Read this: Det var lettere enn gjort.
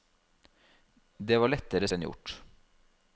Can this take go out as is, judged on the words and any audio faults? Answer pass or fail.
pass